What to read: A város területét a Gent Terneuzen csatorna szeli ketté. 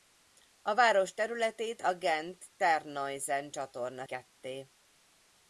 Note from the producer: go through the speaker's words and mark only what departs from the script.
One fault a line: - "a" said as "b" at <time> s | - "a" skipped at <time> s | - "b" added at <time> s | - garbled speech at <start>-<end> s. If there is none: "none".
- "szeli" skipped at 4.0 s